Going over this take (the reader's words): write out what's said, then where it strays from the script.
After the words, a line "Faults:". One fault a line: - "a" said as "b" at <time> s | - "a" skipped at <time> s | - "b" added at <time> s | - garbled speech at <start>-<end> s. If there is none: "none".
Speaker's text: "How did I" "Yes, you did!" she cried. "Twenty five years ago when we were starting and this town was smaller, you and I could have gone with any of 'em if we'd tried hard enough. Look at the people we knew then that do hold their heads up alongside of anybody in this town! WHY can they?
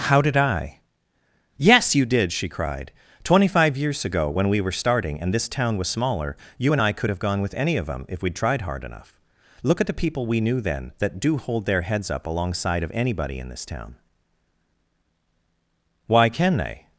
"How did I" "Yes, you did!" she cried. "Twenty five years ago when we were starting and this town was smaller, you and I could have gone with any of 'them if we'd tried hard enough. Look at the people we knew then that do hold their heads up alongside of anybody in this town! WHY can they?
Faults:
- "em" said as "them" at 7.9 s